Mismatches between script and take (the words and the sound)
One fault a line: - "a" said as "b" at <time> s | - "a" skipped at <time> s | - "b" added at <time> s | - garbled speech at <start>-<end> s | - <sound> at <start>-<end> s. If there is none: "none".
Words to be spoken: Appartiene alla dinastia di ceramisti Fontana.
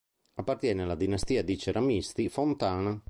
none